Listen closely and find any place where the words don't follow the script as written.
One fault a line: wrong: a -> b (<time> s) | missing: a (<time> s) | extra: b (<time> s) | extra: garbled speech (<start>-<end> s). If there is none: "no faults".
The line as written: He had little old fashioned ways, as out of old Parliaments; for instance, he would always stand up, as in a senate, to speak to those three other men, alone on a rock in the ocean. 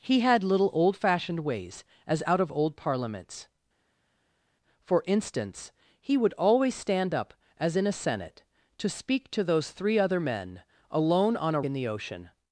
missing: rock (11.6 s)